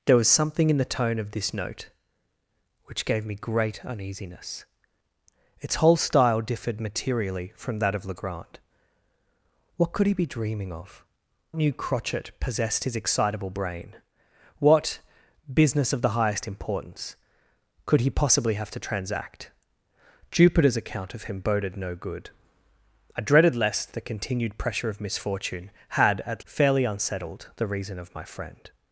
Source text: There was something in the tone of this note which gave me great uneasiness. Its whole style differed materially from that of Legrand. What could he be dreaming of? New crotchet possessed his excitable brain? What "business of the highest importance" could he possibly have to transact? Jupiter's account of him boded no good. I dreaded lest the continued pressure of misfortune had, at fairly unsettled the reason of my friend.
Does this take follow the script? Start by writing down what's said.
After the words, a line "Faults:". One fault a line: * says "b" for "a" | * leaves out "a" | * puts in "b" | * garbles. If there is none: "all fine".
There was something in the tone of this note which gave me great uneasiness. Its whole style differed materially from that of Legrand. What could he be dreaming of? New crotchet possessed his excitable brain? What "business of the highest importance" could he possibly have to transact? Jupiter's account of him boded no good. I dreaded lest the continued pressure of misfortune had, at fairly unsettled the reason of my friend.
Faults:
all fine